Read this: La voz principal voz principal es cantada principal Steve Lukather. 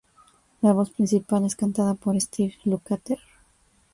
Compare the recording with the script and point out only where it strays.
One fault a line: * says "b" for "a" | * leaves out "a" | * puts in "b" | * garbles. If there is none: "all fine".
* leaves out "voz principal"
* says "por" for "principal"